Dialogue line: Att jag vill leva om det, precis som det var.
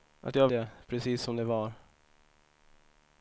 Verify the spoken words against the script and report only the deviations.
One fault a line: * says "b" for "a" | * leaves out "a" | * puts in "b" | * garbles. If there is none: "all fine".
* leaves out "vill leva om"